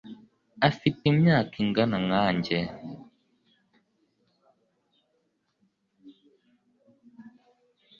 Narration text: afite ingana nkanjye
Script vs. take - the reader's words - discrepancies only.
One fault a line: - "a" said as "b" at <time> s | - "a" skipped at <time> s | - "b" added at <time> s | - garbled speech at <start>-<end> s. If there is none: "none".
- "imyaka" added at 1.1 s